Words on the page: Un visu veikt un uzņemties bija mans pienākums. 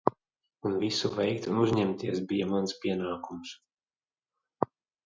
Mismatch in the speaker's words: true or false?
false